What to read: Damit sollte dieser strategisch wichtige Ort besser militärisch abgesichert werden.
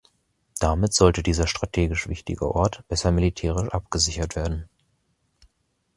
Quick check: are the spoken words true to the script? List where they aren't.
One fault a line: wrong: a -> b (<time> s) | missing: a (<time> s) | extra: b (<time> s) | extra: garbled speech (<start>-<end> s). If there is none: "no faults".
no faults